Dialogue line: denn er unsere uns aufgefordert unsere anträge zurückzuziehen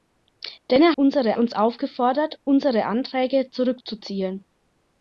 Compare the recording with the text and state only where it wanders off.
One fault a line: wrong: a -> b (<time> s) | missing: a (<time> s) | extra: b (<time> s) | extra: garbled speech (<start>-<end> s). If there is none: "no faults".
no faults